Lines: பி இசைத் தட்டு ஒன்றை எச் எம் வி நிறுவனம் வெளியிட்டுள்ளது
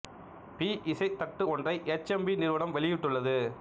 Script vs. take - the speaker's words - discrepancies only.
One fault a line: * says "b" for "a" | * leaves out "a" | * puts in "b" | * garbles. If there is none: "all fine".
all fine